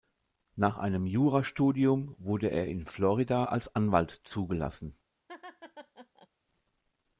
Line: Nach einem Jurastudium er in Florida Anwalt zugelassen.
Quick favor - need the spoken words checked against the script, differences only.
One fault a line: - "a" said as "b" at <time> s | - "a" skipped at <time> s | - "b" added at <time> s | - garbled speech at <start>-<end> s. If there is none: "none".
- "wurde" added at 2.2 s
- "als" added at 3.4 s